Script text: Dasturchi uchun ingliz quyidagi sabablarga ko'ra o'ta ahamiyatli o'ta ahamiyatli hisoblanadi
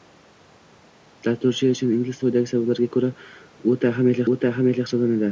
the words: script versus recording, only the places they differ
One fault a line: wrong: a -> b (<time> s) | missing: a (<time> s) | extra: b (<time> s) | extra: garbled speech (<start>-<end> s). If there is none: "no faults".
no faults